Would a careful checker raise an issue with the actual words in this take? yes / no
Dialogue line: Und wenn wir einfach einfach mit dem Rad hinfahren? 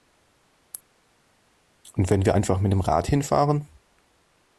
yes